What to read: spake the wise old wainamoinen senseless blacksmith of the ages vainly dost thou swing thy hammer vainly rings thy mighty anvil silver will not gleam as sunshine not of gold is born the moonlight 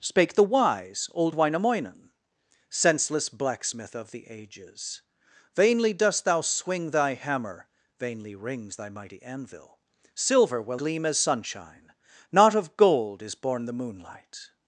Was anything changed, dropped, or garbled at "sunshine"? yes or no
no